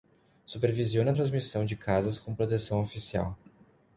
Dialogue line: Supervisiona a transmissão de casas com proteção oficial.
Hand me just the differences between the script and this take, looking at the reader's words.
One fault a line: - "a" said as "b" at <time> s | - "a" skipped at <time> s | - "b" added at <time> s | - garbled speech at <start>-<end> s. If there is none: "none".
none